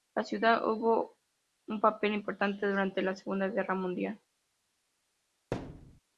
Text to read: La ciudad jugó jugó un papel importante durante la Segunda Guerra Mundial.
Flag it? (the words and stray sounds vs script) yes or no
yes